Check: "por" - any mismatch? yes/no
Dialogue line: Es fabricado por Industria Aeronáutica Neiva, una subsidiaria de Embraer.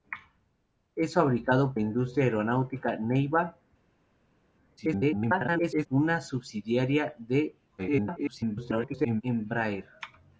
yes